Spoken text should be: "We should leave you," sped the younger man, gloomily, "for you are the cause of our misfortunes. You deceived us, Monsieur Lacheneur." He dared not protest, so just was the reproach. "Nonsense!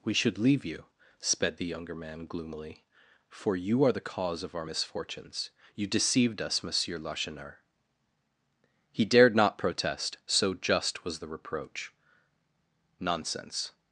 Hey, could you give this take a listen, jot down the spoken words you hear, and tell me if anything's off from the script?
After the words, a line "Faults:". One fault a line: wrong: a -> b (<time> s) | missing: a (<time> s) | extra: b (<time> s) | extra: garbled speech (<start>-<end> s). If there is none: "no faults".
"We should leave you," sped the younger man, gloomily, "for you are the cause of our misfortunes. You deceived us, Monsieur Lacheneur." He dared not protest, so just was the reproach. "Nonsense!
Faults:
no faults